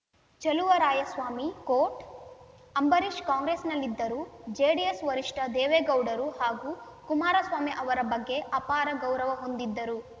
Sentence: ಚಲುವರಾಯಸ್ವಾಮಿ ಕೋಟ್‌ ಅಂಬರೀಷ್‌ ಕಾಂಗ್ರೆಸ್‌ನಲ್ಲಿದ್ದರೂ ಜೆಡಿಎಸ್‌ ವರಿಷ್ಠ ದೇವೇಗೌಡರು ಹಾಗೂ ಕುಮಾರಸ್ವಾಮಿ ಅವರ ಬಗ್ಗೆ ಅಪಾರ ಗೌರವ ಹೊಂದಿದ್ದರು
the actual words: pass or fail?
pass